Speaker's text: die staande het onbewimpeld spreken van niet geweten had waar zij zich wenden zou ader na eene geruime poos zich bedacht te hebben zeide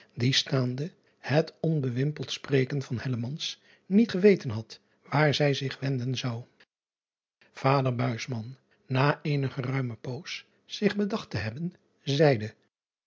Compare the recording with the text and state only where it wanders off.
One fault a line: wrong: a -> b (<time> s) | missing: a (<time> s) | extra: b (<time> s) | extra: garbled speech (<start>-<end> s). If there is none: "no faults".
no faults